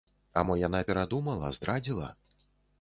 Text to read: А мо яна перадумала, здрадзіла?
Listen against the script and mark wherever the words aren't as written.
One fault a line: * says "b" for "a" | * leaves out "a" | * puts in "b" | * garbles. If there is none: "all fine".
all fine